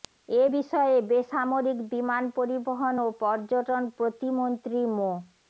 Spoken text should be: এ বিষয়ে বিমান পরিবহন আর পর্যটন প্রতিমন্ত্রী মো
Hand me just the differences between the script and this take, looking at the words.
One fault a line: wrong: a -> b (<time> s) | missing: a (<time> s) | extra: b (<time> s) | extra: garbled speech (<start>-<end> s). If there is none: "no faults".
extra: বেসামরিক (1.1 s)
wrong: আর -> ও (3.0 s)